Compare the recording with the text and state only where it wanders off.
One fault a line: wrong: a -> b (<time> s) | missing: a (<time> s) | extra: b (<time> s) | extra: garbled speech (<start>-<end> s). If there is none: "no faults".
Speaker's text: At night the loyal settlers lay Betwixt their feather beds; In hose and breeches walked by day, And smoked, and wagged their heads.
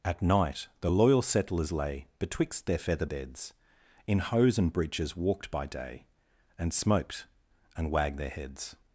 no faults